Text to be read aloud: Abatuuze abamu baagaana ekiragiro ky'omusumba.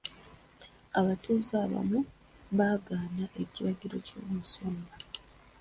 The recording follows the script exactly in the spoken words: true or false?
true